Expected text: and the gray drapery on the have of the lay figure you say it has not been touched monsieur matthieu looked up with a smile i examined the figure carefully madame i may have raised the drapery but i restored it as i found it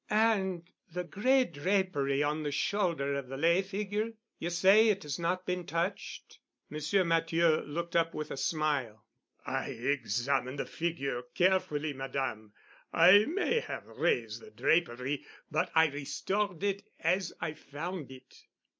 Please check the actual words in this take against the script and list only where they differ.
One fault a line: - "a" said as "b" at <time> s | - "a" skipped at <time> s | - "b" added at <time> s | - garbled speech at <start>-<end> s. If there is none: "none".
- "have" said as "shoulder" at 2.5 s